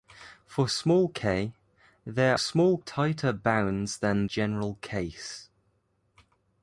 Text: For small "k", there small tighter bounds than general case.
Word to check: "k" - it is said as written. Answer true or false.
true